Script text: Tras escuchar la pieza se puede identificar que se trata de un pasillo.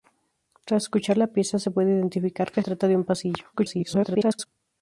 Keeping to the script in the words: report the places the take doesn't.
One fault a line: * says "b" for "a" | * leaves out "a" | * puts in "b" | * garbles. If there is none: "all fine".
* leaves out "se"
* garbles